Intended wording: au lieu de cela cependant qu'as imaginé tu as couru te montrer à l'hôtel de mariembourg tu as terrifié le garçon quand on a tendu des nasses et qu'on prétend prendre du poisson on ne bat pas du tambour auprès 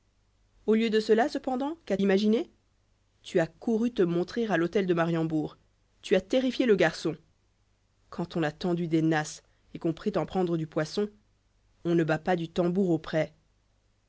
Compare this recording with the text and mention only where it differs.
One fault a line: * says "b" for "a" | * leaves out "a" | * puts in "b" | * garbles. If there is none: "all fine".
all fine